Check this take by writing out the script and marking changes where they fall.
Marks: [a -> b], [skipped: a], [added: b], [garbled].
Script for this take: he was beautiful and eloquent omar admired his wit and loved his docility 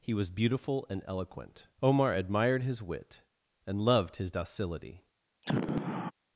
he was beautiful and eloquent omar admired his wit and loved his docility